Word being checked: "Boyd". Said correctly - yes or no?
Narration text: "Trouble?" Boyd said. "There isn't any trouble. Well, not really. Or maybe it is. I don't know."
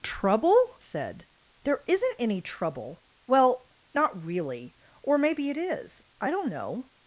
no